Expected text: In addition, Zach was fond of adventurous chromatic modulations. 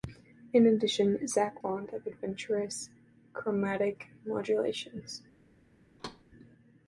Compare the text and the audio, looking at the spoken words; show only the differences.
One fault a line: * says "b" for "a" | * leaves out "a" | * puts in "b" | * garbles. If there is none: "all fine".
* leaves out "was"